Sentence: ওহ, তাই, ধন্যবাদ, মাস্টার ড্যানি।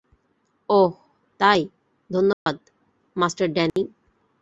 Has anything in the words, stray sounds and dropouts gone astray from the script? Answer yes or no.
yes